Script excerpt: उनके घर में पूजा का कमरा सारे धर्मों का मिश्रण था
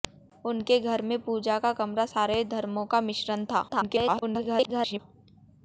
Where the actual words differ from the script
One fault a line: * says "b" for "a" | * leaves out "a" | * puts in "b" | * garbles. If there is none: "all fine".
* garbles